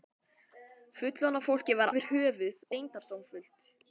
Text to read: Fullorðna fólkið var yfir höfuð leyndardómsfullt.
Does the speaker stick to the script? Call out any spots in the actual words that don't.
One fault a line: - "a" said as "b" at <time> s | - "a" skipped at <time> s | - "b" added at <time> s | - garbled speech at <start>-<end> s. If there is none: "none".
none